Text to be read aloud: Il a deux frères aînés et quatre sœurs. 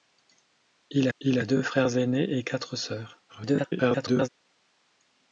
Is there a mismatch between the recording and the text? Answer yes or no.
yes